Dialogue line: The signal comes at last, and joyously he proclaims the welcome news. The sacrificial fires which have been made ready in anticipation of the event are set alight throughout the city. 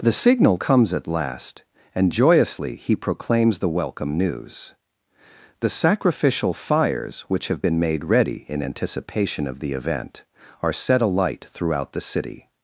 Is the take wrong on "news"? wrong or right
right